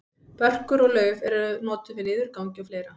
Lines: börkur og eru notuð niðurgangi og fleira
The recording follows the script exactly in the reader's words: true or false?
false